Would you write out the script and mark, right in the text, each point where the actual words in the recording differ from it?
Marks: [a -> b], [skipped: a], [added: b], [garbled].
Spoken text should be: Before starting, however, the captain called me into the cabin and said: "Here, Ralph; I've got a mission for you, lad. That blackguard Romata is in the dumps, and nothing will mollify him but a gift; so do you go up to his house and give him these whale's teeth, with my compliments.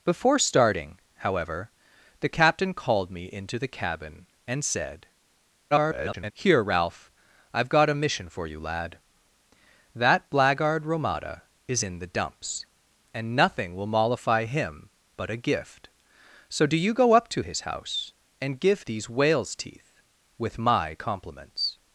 Before starting, however, the captain called me into the cabin and said: [garbled] "Here, Ralph; I've got a mission for you, lad. That blackguard Romata is in the dumps, and nothing will mollify him but a gift; so do you go up to his house and give [skipped: him] these whale's teeth, with my compliments.